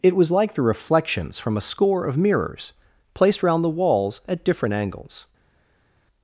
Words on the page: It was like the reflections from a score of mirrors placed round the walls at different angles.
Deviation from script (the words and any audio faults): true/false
false